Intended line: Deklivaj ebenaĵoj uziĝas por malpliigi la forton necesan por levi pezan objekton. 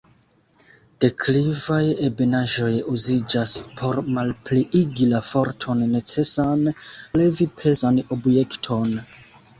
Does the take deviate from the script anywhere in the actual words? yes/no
yes